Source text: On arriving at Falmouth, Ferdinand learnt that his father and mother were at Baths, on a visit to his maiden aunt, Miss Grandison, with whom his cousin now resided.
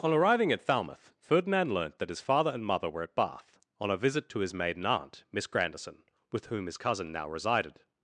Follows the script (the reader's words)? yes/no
no